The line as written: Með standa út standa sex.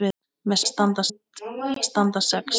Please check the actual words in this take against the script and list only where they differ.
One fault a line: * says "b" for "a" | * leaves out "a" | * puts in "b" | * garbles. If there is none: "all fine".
all fine